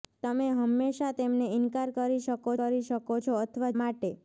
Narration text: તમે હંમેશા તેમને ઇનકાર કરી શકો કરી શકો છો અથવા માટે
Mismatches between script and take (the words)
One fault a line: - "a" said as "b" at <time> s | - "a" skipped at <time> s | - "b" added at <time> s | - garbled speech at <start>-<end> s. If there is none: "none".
none